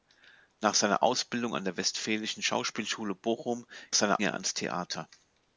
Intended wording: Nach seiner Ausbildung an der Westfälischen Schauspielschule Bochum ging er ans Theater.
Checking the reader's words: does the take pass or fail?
fail